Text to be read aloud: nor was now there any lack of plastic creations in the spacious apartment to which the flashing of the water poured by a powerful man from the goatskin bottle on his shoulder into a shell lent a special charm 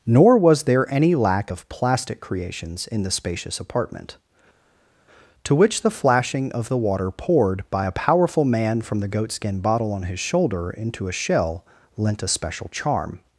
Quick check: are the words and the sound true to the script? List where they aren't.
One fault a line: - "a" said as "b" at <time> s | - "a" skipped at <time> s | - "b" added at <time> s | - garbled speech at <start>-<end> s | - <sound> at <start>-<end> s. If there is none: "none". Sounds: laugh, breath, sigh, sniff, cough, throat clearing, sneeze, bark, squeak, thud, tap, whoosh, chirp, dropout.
- "now" skipped at 0.6 s